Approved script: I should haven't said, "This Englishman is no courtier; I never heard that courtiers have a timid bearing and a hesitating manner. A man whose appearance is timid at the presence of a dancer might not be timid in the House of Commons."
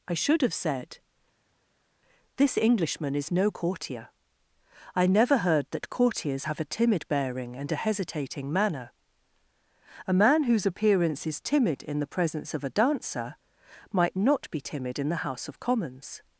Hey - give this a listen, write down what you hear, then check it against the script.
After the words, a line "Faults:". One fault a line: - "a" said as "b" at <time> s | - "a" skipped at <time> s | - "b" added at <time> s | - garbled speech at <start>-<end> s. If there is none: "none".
I should have said, "This Englishman is no courtier; I never heard that courtiers have a timid bearing and a hesitating manner. A man whose appearance is timid in the presence of a dancer might not be timid in the House of Commons."
Faults:
- "haven't" said as "have" at 0.4 s
- "at" said as "in" at 11.8 s